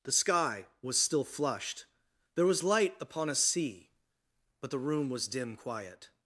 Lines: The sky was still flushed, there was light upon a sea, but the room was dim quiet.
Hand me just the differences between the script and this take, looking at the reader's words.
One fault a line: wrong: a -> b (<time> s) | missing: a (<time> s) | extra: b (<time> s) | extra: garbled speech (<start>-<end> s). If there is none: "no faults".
no faults